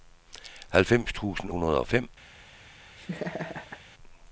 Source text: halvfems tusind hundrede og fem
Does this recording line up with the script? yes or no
yes